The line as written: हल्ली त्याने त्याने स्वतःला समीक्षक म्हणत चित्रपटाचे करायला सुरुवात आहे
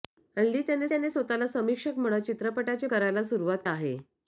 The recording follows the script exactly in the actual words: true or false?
true